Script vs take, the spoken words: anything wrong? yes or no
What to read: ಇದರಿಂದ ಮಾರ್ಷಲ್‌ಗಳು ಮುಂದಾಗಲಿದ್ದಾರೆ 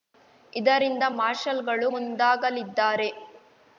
no